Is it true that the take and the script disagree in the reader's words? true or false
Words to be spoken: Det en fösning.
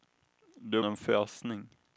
false